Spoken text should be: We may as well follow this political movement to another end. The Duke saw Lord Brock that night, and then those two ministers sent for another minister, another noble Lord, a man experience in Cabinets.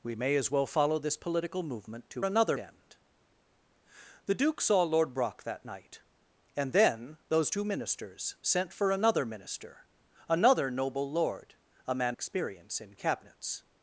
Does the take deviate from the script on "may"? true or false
false